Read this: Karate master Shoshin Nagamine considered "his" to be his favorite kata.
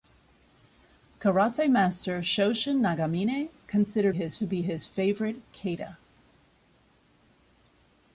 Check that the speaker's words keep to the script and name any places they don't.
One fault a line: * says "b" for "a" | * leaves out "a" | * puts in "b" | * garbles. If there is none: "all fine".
all fine